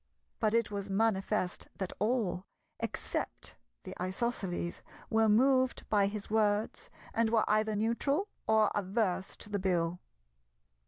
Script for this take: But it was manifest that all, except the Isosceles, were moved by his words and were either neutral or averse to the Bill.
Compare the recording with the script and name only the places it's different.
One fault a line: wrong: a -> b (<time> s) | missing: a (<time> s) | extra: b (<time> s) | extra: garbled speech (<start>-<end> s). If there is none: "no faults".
no faults